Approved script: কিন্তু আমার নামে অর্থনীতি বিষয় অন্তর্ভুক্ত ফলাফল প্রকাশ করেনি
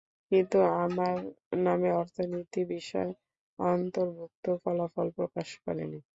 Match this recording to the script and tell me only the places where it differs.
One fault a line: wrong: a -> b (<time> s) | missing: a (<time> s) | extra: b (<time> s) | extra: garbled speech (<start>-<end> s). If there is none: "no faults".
no faults